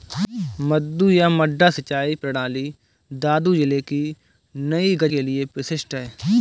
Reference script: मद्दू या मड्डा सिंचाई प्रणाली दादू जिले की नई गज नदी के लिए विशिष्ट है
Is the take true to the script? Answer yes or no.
no